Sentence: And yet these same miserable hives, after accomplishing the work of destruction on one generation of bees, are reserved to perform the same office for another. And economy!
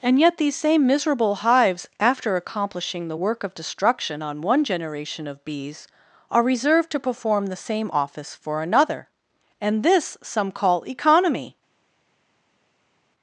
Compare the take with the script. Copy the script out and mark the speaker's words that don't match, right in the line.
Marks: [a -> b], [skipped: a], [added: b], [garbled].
And yet these same miserable hives, after accomplishing the work of destruction on one generation of bees, are reserved to perform the same office for another. And [added: this some call] economy!